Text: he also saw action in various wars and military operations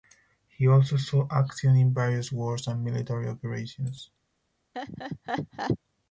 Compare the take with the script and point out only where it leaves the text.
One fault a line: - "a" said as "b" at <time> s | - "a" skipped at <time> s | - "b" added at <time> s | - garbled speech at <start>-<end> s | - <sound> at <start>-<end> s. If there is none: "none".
- laugh at 4.7-5.8 s